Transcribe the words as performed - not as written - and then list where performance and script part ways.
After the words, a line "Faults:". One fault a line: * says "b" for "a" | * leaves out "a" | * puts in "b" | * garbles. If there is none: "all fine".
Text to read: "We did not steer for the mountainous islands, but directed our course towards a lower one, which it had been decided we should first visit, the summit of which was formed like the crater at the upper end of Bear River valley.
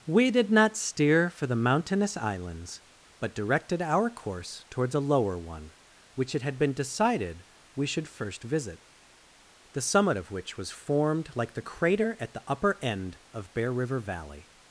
"We did not steer for the mountainous islands, but directed our course towards a lower one, which it had been decided we should first visit, the summit of which was formed like the crater at the upper end of Bear River valley.
Faults:
all fine